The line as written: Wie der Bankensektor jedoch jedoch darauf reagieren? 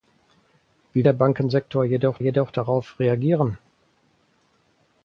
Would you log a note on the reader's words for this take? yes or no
no